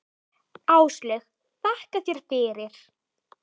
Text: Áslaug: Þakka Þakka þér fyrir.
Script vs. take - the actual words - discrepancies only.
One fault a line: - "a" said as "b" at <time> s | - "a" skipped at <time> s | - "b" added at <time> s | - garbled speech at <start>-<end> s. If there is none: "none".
- "Þakka" skipped at 2.0 s